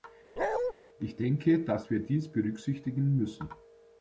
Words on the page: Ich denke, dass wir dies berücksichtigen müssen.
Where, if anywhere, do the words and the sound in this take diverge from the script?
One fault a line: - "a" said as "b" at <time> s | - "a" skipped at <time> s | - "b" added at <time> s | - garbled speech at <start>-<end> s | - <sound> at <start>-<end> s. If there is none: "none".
- bark at 0.4-0.7 s